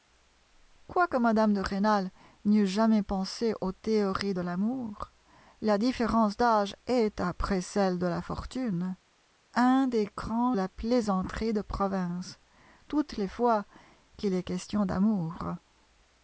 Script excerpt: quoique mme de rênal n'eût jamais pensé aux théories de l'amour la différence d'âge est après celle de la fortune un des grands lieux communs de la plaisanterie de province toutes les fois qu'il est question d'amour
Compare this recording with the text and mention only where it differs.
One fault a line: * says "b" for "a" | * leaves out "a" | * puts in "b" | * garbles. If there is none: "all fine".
* leaves out "lieux communs de"